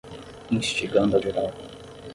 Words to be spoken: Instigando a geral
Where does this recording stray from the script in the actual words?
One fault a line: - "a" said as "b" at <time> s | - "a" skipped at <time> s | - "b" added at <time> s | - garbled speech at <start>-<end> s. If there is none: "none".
none